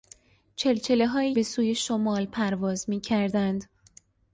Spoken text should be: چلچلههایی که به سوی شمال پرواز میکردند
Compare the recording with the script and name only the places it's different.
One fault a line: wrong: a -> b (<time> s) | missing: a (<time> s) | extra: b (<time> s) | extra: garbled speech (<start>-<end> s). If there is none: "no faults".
missing: که (1.4 s)